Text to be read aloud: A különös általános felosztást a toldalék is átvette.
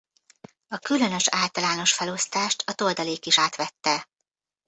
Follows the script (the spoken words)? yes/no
yes